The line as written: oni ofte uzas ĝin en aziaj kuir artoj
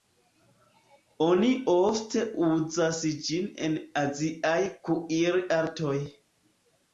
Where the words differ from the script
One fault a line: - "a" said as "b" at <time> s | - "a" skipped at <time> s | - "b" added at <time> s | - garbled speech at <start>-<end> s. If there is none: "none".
none